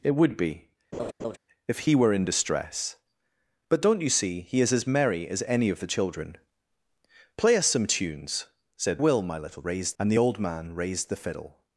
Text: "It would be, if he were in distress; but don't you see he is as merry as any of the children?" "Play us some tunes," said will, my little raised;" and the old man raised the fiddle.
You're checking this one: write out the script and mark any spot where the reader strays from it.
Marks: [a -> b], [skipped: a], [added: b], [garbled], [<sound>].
"It would be, [laugh] if he were in distress; but don't you see he is as merry as any of the children?" "Play us some tunes," said will, my little raised;" and the old man raised the fiddle.